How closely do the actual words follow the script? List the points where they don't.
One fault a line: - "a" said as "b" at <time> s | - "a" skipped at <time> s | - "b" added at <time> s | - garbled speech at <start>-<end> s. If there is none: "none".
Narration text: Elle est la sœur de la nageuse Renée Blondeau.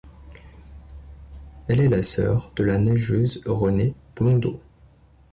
none